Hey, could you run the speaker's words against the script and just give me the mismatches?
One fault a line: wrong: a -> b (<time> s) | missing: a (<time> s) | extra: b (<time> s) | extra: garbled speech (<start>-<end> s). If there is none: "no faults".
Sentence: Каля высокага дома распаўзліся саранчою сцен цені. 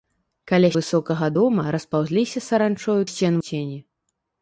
no faults